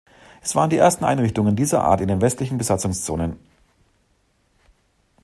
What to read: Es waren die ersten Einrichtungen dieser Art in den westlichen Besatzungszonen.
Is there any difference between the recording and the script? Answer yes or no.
no